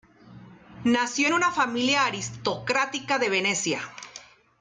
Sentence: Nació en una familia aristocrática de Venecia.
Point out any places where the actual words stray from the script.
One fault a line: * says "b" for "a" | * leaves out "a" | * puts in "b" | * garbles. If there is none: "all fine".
all fine